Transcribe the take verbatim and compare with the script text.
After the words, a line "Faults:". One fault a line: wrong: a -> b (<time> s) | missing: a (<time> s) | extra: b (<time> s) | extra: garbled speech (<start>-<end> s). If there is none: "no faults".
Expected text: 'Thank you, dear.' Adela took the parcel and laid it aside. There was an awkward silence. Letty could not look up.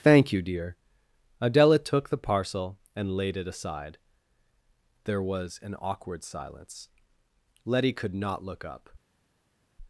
'Thank you, dear.' Adela took the parcel and laid it aside. There was an awkward silence. Letty could not look up.
Faults:
no faults